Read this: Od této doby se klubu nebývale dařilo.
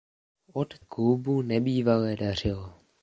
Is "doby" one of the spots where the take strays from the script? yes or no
yes